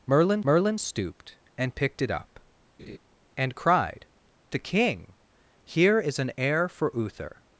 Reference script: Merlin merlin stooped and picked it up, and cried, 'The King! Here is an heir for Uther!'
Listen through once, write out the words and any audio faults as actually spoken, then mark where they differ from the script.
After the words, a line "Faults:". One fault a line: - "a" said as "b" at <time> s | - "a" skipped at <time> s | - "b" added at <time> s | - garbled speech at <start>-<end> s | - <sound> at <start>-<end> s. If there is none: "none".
Merlin merlin stooped and picked it up, and cried, 'The King! Here is an heir for Uther!'
Faults:
- laugh at 2.8-3.0 s